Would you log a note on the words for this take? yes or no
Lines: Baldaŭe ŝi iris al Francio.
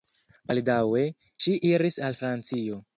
no